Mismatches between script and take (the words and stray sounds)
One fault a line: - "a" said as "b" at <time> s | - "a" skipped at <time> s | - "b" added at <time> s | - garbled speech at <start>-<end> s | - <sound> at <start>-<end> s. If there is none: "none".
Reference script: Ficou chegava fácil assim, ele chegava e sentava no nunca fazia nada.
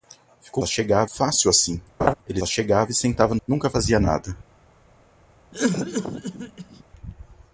- laugh at 2.0-2.1 s
- cough at 5.5-6.8 s